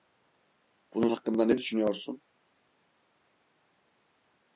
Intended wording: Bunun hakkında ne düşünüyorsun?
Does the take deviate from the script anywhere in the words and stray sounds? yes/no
no